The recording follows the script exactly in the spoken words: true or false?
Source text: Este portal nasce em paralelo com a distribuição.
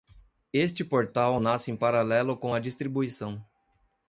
true